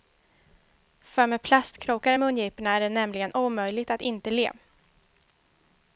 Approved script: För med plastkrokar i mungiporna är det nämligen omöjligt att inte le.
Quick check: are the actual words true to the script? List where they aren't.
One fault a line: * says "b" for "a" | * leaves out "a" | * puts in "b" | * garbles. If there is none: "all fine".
all fine